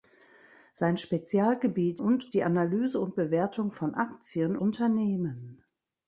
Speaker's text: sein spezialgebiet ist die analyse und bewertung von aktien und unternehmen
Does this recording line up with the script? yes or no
no